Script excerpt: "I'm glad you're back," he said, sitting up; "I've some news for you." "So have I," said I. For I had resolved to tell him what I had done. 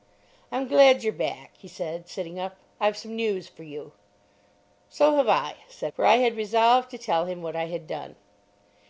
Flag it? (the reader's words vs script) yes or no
yes